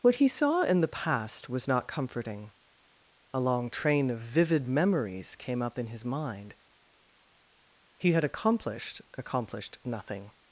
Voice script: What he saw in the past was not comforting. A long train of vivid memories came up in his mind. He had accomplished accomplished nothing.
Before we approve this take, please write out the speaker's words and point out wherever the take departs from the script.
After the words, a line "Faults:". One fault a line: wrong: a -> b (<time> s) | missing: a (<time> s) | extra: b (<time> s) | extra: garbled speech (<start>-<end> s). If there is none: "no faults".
What he saw in the past was not comforting. A long train of vivid memories came up in his mind. He had accomplished accomplished nothing.
Faults:
no faults